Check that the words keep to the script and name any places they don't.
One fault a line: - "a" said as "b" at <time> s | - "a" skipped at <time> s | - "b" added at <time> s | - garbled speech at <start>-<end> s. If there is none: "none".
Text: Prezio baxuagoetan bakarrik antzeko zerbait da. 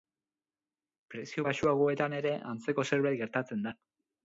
- "bakarrik" said as "ere" at 2.2 s
- "gertatzen" added at 3.3 s